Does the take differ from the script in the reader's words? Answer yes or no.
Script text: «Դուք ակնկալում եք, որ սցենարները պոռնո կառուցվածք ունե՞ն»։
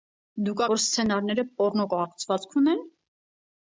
yes